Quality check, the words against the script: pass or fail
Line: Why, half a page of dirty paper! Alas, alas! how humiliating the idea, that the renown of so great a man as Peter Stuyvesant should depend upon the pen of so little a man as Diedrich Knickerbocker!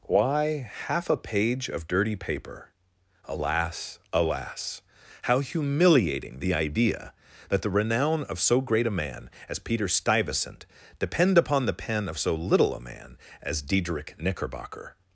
fail